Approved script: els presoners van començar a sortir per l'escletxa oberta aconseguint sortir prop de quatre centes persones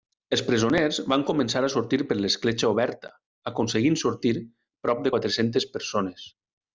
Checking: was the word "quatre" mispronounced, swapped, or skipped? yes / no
no